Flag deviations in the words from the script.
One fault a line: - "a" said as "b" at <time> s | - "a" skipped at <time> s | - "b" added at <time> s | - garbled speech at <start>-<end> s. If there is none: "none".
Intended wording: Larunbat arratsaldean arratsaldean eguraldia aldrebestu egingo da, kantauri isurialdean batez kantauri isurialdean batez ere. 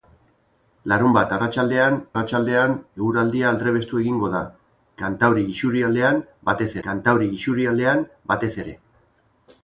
none